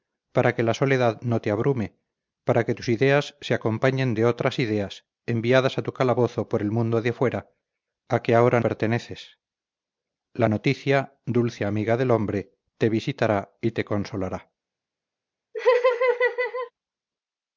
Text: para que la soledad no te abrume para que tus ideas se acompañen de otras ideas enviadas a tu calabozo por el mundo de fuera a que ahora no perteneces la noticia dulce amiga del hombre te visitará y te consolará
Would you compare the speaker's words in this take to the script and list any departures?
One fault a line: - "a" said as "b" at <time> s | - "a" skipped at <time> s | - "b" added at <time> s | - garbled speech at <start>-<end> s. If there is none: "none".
- "no" skipped at 8.6 s